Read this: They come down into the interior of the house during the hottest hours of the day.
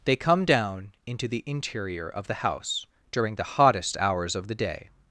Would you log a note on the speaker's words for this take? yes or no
no